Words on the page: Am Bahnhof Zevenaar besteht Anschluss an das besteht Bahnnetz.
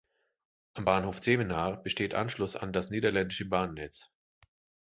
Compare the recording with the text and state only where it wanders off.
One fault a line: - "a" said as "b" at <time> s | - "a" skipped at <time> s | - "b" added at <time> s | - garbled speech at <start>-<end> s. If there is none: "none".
- "besteht" said as "niederländische" at 2.9 s